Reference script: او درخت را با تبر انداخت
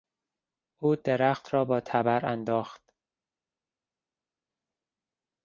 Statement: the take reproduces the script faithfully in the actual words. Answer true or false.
true